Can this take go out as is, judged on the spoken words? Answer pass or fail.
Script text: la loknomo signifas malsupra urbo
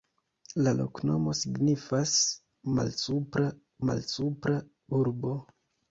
fail